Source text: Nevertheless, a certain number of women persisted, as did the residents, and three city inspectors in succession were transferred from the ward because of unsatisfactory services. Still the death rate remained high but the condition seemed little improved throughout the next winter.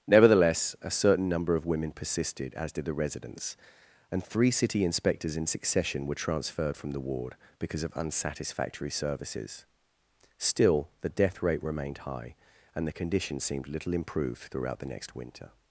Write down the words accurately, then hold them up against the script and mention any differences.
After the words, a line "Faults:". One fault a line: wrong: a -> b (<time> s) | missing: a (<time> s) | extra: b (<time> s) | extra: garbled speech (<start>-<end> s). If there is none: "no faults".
Nevertheless, a certain number of women persisted, as did the residents, and three city inspectors in succession were transferred from the ward because of unsatisfactory services. Still the death rate remained high and the condition seemed little improved throughout the next winter.
Faults:
wrong: but -> and (12.7 s)